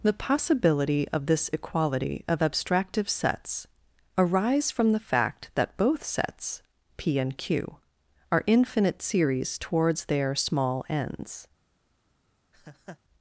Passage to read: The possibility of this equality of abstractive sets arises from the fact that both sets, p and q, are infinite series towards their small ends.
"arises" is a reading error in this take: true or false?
true